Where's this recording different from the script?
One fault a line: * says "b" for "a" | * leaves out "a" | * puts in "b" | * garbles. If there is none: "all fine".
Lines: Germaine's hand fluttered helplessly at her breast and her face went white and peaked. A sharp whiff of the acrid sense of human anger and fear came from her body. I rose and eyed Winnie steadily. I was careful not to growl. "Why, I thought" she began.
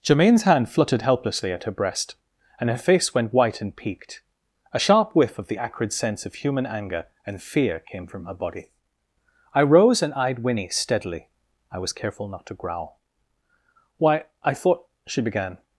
all fine